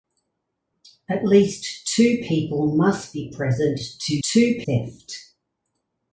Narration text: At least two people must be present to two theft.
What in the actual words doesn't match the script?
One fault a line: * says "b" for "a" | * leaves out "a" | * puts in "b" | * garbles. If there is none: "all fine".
all fine